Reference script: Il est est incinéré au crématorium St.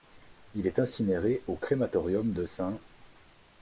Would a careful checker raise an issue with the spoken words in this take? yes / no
yes